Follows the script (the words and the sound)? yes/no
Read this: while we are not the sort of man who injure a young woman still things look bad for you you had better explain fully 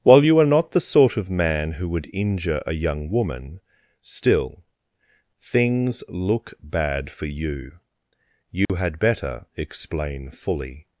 no